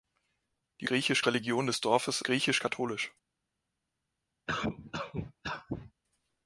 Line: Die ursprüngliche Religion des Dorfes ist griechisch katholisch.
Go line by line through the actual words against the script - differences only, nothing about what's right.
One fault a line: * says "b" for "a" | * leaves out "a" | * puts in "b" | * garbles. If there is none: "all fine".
* says "griechisch" for "ursprüngliche"
* leaves out "ist"